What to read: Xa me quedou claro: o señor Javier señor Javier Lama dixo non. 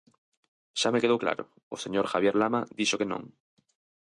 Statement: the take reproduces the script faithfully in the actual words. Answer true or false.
false